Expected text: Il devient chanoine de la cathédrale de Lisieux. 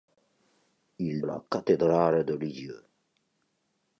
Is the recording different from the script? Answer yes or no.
yes